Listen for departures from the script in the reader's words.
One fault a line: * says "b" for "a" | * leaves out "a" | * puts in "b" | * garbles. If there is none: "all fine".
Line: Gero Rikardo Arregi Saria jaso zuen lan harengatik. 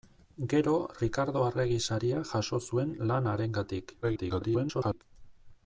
* garbles